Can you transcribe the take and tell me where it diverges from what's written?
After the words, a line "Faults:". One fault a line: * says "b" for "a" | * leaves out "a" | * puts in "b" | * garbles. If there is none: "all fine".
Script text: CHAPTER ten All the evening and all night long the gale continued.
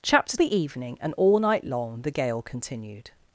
CHAPTER the evening and all night long the gale continued.
Faults:
* leaves out "ten All"